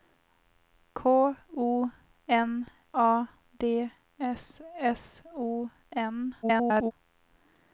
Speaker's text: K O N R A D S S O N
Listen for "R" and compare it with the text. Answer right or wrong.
wrong